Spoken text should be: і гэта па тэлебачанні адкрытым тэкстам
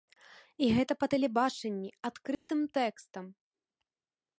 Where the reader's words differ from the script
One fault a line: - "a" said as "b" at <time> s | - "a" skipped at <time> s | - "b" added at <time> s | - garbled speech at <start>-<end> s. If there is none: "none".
none